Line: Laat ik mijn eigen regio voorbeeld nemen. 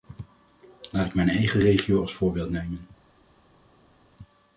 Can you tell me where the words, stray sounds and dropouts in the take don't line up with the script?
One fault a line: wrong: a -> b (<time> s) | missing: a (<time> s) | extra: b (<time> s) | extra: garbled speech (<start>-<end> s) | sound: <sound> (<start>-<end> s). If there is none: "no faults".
extra: als (2.0 s)